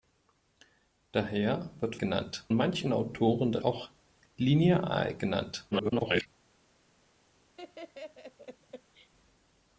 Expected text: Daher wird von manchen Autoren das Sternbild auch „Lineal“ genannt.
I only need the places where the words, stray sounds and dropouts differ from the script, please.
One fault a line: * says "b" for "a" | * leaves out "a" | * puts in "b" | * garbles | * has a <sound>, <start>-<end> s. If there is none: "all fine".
* says "genannt" for "von"
* leaves out "Sternbild"
* garbles
* has a laugh, 7.6-9.1 s